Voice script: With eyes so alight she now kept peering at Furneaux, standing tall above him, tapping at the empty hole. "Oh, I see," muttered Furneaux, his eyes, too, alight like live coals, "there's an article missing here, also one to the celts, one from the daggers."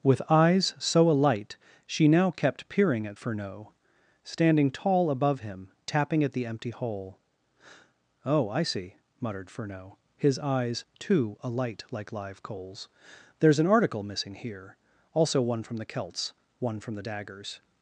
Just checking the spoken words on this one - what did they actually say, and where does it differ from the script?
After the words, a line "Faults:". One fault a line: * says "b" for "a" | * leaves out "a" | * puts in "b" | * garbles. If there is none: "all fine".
With eyes so alight she now kept peering at Furneaux, standing tall above him, tapping at the empty hole. "Oh, I see," muttered Furneaux, his eyes, too, alight like live coals, "there's an article missing here, also one from the celts, one from the daggers."
Faults:
* says "from" for "to"